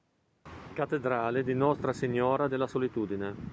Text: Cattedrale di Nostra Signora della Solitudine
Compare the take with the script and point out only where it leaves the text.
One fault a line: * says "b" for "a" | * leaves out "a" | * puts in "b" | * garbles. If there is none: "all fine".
all fine